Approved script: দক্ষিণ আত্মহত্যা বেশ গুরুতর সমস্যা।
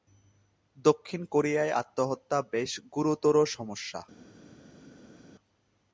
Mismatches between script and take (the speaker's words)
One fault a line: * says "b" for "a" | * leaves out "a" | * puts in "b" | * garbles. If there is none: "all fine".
* puts in "কোরিয়ায়"